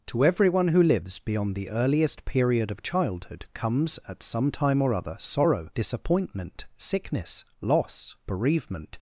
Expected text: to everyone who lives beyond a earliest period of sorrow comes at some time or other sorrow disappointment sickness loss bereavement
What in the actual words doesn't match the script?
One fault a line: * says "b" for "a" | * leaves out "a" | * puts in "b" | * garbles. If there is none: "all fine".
* says "the" for "a"
* says "childhood" for "sorrow"